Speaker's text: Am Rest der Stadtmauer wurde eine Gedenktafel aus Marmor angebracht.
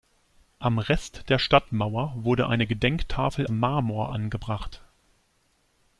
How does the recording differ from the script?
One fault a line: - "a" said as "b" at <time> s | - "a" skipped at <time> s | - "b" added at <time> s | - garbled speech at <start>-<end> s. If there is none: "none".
- "aus" skipped at 3.5 s